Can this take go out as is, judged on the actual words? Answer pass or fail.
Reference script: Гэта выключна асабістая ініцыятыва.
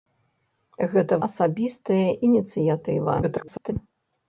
fail